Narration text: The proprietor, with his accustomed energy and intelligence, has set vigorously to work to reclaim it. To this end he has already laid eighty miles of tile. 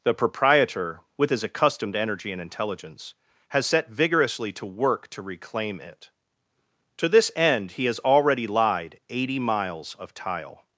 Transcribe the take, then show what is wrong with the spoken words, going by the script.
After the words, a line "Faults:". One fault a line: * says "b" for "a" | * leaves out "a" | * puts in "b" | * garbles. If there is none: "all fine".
The proprietor, with his accustomed energy and intelligence, has set vigorously to work to reclaim it. To this end he has already lied eighty miles of tile.
Faults:
* says "lied" for "laid"